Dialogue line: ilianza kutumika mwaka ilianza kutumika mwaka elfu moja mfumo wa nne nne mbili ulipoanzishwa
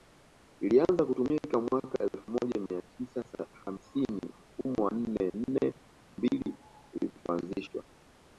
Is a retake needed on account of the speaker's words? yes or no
yes